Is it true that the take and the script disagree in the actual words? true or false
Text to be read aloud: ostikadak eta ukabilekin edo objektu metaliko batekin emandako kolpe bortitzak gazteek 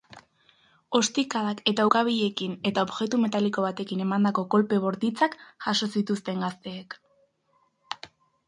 true